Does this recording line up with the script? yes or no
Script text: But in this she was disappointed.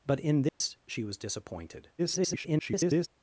no